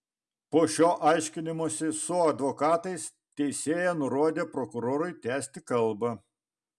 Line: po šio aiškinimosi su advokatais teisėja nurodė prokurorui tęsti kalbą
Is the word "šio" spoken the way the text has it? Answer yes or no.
yes